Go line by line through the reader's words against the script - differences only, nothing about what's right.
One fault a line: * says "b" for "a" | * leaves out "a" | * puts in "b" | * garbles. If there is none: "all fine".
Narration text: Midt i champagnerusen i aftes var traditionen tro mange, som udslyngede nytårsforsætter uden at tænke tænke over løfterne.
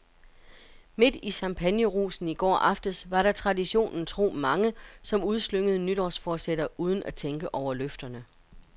* puts in "går"
* puts in "der"
* leaves out "tænke"